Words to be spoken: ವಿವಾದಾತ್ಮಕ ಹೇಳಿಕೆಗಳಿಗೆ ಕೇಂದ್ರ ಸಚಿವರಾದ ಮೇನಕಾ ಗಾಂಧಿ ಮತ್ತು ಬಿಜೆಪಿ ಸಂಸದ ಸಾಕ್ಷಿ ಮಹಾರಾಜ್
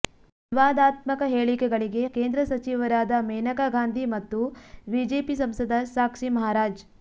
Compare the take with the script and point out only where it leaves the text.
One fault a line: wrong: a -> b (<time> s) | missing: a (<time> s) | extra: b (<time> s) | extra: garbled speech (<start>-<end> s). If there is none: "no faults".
no faults